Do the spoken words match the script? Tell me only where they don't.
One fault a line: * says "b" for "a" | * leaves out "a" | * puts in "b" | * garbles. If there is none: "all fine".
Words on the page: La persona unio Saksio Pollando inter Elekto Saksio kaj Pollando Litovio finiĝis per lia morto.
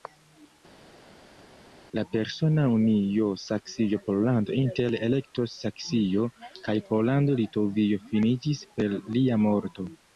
all fine